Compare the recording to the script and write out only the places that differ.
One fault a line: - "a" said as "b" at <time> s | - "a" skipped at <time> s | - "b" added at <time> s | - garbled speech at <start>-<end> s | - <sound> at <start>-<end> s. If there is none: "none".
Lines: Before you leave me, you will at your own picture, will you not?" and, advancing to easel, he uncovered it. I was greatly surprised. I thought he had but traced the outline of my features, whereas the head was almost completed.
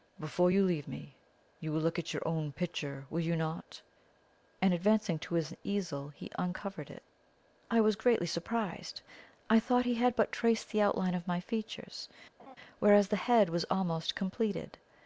- "look" added at 1.8 s
- "his" added at 5.3 s
- laugh at 12.4-12.6 s